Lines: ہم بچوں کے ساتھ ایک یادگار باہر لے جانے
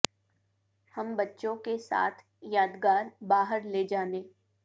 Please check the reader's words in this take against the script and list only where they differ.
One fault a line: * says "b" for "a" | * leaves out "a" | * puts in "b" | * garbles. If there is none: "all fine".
* leaves out "ایک"